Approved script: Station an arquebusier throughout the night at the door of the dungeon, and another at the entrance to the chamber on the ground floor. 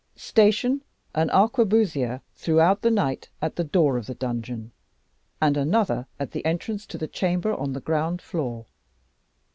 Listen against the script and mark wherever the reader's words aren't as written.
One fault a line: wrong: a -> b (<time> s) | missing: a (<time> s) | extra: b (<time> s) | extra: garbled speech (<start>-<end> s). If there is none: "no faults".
no faults